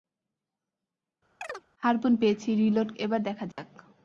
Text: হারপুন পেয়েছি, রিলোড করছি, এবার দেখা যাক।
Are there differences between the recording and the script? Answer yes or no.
yes